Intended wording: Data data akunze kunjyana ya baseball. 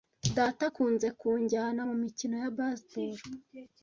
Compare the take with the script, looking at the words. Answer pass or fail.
fail